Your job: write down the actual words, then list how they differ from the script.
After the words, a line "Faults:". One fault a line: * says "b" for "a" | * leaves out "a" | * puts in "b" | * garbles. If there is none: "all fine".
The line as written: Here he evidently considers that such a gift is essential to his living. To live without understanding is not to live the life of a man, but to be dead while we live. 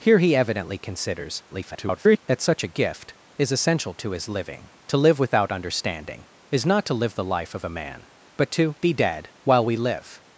Here he evidently considers [garbled] that such a gift is essential to his living. To live without understanding is not to live the life of a man, but to be dead while we live.
Faults:
* garbles